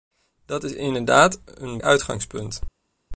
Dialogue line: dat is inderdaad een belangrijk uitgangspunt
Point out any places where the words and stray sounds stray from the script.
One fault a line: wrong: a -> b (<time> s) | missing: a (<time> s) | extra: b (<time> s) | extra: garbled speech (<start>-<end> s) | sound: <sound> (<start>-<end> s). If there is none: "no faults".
missing: belangrijk (1.8 s)